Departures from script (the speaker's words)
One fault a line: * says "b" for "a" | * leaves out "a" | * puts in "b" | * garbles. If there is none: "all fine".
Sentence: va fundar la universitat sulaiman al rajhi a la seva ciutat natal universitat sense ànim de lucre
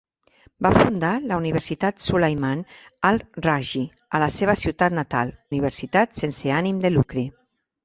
all fine